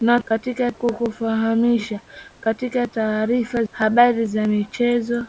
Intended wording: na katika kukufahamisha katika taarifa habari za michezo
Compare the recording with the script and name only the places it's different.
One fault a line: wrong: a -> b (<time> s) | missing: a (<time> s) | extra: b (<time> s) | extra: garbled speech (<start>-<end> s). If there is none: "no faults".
no faults